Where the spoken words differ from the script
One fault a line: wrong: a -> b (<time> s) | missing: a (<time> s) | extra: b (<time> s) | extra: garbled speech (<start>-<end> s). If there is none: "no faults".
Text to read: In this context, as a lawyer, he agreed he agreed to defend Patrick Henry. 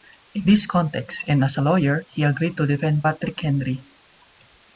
extra: and (1.3 s)
missing: he agreed (2.6 s)